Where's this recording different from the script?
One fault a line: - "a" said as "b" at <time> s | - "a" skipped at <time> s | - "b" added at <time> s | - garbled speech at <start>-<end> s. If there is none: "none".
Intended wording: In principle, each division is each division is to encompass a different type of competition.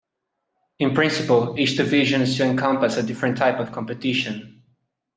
- "each division is" skipped at 2.4 s